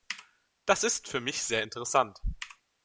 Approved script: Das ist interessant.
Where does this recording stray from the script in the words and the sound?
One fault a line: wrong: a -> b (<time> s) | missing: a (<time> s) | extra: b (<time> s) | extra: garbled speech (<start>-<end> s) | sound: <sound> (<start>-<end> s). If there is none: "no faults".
extra: für mich sehr (1.1 s)